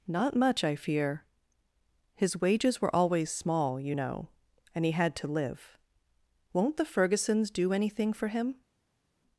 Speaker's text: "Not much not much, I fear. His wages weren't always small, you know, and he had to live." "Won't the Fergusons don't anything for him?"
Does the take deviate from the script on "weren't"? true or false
true